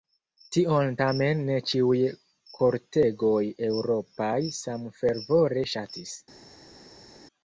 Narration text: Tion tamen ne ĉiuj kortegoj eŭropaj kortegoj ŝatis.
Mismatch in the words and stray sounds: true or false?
true